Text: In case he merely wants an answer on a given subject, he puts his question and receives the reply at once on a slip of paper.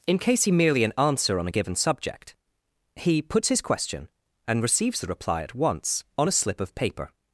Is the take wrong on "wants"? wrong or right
wrong